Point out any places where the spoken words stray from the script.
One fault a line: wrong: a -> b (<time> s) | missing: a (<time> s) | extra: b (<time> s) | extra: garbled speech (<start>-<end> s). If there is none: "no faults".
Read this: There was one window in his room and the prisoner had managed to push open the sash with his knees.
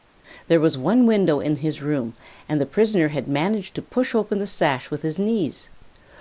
no faults